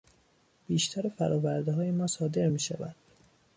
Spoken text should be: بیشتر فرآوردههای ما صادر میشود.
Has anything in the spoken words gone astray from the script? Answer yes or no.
no